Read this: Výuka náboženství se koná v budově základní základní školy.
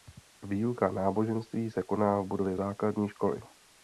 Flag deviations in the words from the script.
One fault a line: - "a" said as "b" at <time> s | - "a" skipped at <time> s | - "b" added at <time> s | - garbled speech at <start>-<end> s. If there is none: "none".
- "základní" skipped at 3.1 s